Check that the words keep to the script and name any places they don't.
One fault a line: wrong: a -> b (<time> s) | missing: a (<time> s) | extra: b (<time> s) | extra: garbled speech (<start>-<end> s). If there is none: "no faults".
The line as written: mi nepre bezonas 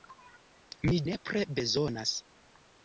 no faults